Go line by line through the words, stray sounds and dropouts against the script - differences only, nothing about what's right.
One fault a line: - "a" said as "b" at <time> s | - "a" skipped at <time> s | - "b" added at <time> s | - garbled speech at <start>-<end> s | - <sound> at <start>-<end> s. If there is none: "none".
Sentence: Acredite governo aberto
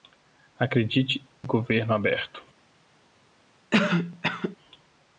- cough at 3.7-4.6 s